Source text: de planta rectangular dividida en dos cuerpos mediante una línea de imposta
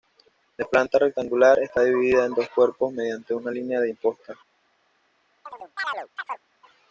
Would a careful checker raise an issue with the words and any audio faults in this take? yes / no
yes